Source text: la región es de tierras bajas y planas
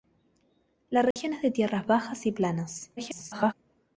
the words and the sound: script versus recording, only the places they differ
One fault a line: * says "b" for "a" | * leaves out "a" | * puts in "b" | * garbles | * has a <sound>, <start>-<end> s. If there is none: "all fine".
* has a dropout, 1.1-1.2 s
* garbles